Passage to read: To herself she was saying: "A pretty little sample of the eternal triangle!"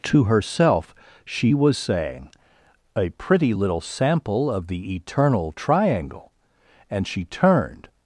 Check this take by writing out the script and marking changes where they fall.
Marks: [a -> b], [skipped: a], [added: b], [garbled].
To herself she was saying: "A pretty little sample of the eternal triangle!" [added: And she turned]